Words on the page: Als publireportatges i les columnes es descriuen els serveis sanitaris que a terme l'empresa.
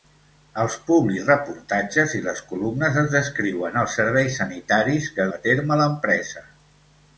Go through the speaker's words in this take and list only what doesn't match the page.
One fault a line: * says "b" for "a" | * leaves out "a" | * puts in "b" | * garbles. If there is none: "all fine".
all fine